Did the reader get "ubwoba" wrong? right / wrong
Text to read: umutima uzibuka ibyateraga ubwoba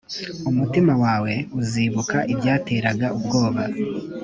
right